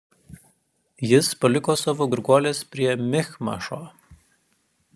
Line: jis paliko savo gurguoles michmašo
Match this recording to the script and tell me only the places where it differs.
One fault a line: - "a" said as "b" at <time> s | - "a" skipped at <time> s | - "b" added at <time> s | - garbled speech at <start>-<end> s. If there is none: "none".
- "prie" added at 2.7 s